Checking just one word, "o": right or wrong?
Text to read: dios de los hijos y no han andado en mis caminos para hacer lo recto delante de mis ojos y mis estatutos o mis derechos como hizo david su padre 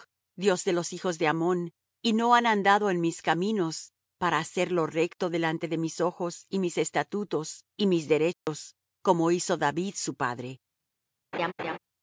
wrong